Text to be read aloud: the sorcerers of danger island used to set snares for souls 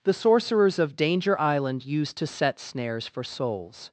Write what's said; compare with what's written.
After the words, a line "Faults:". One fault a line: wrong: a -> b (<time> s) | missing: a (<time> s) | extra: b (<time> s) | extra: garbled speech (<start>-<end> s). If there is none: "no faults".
the sorcerers of danger island used to set snares for souls
Faults:
no faults